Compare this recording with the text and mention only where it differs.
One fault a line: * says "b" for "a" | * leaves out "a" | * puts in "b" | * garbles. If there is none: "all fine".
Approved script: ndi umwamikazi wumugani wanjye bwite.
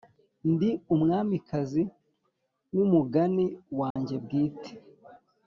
all fine